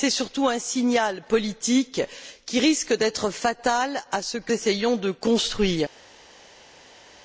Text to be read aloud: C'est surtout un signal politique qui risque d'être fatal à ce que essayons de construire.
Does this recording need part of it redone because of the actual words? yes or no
no